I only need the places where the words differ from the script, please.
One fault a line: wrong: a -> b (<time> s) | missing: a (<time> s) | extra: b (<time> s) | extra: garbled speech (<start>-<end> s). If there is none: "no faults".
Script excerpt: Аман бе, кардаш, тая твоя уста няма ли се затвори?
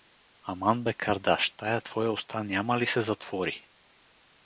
no faults